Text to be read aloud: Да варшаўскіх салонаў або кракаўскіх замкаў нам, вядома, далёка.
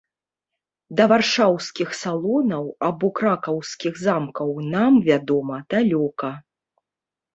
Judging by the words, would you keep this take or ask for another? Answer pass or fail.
pass